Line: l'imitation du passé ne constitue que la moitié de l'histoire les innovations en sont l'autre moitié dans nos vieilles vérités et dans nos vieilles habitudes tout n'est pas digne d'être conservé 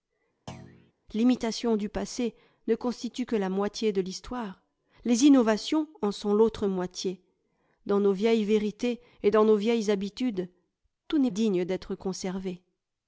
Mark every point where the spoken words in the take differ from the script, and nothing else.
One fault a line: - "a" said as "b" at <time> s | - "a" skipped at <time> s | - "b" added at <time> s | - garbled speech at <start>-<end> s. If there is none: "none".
- "pas" skipped at 11.3 s